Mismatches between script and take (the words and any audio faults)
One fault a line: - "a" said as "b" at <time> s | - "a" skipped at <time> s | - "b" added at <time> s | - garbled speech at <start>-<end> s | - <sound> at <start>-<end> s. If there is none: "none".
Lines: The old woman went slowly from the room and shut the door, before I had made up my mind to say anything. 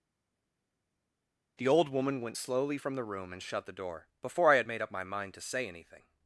none